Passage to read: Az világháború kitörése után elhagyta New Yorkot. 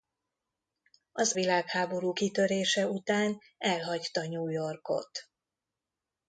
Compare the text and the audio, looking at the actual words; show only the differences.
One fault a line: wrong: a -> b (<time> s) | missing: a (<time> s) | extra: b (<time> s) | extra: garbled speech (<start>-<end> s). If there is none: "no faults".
no faults